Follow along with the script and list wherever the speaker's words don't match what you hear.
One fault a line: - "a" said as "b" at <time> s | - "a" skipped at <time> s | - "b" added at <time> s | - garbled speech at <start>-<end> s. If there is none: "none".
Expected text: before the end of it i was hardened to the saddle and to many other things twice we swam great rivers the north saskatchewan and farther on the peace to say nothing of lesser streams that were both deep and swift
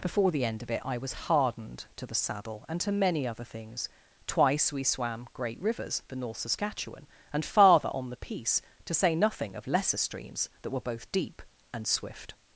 none